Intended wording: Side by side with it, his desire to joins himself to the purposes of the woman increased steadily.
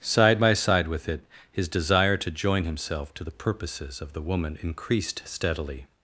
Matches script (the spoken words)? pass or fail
fail